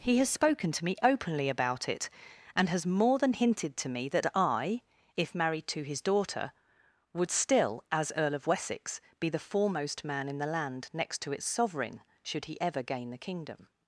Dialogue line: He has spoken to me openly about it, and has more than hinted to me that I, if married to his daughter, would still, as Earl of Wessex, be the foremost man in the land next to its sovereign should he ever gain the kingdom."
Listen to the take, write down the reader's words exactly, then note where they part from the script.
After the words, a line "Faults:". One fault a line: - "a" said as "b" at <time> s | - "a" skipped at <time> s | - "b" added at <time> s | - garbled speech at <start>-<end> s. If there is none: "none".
He has spoken to me openly about it, and has more than hinted to me that I, if married to his daughter, would still, as Earl of Wessex, be the foremost man in the land next to its sovereign should he ever gain the kingdom."
Faults:
none